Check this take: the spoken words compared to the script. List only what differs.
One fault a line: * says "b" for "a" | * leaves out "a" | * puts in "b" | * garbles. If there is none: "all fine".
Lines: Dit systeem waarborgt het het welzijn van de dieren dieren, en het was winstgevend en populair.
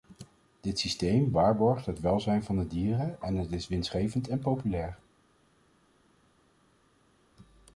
* leaves out "het"
* leaves out "dieren"
* says "is" for "was"